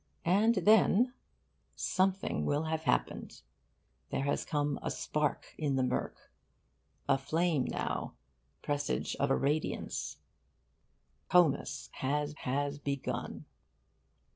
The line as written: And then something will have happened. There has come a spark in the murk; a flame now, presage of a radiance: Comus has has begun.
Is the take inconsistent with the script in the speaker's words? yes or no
no